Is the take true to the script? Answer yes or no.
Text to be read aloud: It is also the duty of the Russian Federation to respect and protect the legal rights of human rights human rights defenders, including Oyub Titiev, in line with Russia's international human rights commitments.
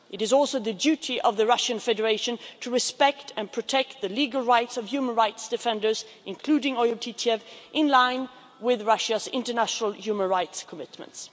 no